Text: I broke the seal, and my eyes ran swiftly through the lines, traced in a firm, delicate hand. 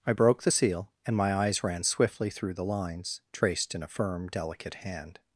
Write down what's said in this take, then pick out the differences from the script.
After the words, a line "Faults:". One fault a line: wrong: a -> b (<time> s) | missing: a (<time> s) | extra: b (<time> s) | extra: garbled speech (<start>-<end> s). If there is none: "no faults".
I broke the seal, and my eyes ran swiftly through the lines, traced in a firm, delicate hand.
Faults:
no faults